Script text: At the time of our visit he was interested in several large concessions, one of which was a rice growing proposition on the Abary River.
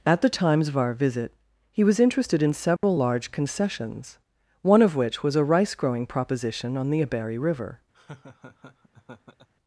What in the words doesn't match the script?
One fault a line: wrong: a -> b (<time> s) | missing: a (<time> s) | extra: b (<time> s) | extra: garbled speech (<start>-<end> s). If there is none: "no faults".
wrong: time -> times (0.3 s)